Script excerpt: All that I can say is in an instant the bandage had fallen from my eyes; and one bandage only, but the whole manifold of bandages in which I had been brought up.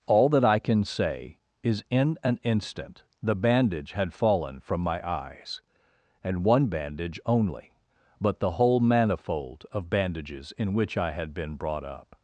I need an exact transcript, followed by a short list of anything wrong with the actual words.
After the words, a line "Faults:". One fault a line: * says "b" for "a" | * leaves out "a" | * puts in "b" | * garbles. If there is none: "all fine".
All that I can say is in an instant the bandage had fallen from my eyes; and one bandage only, but the whole manifold of bandages in which I had been brought up.
Faults:
all fine